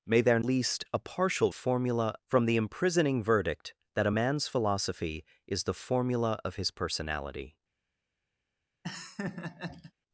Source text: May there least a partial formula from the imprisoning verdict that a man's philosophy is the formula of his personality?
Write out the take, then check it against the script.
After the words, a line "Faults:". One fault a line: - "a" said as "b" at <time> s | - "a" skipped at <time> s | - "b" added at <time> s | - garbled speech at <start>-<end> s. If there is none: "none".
May there least a partial formula from the imprisoning verdict that a man's philosophy is the formula of his personality?
Faults:
none